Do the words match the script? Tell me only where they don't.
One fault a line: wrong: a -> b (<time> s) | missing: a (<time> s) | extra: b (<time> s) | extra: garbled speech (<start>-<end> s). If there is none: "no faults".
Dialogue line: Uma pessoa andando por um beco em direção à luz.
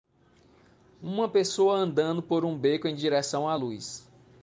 no faults